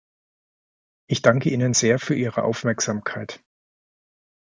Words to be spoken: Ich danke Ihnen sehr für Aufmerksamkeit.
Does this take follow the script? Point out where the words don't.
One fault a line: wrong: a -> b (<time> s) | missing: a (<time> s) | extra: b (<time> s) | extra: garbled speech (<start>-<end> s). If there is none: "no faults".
extra: Ihre (2.1 s)